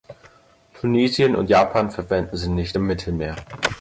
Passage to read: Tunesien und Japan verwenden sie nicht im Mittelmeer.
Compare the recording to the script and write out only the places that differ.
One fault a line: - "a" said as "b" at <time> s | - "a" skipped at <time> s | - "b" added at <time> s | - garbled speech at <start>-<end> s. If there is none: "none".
none